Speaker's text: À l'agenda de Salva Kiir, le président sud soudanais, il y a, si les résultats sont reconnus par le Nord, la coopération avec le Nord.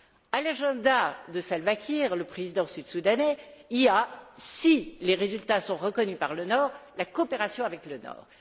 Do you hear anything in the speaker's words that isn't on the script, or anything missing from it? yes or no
no